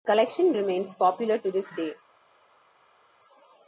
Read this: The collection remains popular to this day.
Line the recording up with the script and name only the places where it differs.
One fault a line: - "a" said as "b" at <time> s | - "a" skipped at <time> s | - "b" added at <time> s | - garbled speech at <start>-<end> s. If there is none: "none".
none